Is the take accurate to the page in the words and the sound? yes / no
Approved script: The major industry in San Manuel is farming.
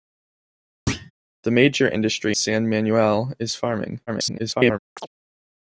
no